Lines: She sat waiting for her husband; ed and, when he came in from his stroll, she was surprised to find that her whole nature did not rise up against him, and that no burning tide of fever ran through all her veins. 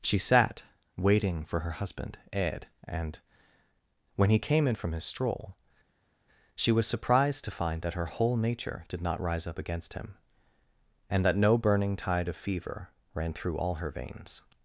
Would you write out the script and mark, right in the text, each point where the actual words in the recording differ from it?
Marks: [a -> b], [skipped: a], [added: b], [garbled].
She sat waiting for her husband; ed and, when he came in from his stroll, she was surprised to find that her whole nature did not rise up against him, and that no burning tide of fever ran through all her veins.